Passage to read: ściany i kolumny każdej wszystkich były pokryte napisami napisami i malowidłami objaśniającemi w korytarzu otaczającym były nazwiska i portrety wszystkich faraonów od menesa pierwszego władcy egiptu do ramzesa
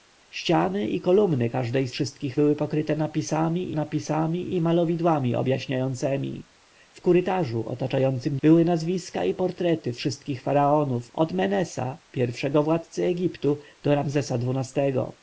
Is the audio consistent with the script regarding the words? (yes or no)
yes